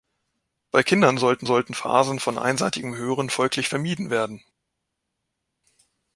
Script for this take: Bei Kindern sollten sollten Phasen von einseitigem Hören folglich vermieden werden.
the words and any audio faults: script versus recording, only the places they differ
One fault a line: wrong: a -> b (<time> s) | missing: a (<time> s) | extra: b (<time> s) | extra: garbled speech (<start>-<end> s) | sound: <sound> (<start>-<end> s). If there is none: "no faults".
no faults